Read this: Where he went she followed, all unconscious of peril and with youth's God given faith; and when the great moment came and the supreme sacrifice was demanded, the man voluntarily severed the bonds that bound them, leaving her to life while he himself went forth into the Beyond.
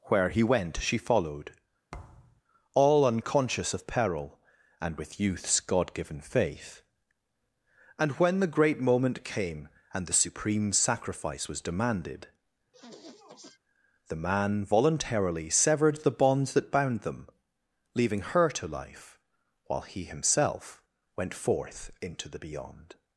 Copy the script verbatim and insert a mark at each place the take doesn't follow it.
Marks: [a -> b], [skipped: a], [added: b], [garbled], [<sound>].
Where he went she followed, [thud] all unconscious of peril and with youth's God given faith; and when the great moment came and the supreme sacrifice was demanded, [sniff] the man voluntarily severed the bonds that bound them, leaving her to life while he himself went forth into the Beyond.